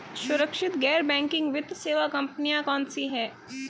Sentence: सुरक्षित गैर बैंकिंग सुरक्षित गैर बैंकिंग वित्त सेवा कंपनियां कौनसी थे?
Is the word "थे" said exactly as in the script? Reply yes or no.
no